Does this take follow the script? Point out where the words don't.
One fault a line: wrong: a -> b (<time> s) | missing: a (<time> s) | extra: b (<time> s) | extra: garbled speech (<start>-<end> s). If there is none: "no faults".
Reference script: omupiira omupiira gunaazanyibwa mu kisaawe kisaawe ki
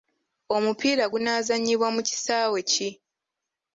missing: omupiira (1.1 s)
missing: kisaawe (2.6 s)